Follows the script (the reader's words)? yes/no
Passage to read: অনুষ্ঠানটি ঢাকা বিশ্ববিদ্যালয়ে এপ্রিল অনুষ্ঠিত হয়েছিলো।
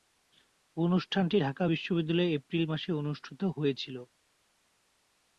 no